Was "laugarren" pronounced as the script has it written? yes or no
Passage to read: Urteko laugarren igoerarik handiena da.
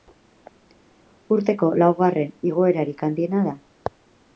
yes